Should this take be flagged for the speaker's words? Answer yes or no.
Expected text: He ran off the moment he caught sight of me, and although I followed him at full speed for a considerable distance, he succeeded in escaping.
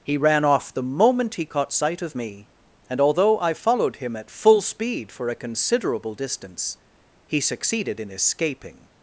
no